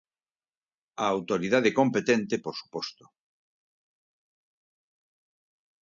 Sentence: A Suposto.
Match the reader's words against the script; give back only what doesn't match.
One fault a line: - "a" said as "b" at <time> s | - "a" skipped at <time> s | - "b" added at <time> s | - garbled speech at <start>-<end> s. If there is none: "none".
- "Autoridade Competente por" added at 1.1 s